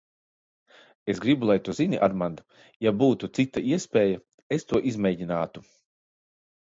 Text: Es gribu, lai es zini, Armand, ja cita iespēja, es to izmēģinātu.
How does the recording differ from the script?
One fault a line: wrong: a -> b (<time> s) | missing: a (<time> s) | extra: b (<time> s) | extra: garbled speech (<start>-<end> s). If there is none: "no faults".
wrong: es -> tu (1.6 s)
extra: būtu (3.0 s)